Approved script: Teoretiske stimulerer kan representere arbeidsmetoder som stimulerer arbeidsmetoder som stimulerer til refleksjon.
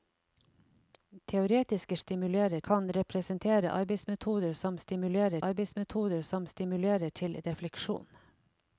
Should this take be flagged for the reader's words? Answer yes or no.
no